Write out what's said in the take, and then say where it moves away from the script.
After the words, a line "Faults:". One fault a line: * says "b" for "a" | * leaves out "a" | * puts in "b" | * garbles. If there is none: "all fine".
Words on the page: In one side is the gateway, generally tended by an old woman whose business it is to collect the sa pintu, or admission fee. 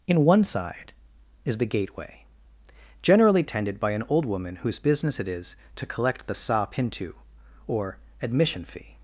In one side is the gateway, generally tended by an old woman whose business it is to collect the sa pintu, or admission fee.
Faults:
all fine